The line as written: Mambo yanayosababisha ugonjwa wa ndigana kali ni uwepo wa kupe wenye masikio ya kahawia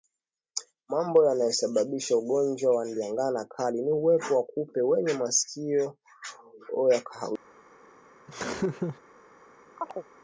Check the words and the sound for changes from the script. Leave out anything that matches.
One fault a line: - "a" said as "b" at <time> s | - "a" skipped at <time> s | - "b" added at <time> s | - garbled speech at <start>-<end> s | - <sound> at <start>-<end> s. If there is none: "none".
- laugh at 8.3-9.0 s
- chirp at 9.8-10.1 s